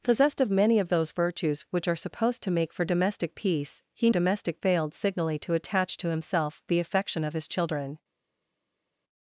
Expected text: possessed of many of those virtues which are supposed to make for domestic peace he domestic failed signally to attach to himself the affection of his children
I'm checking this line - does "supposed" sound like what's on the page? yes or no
yes